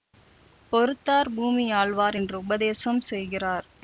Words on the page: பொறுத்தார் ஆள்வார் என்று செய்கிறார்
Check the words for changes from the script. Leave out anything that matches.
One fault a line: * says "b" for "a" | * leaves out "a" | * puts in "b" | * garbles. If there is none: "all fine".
* puts in "பூமி"
* puts in "உபதேசம்"